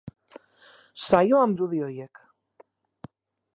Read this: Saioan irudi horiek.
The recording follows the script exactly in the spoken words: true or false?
true